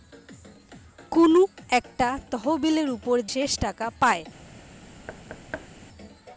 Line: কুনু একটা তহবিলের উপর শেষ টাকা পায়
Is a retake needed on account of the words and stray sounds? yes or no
yes